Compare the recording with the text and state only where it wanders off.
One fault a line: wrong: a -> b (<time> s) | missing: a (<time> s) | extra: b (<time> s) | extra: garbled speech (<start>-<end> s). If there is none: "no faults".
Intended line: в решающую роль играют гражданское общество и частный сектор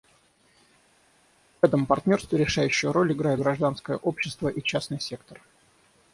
extra: этом партнерстве (1.7 s)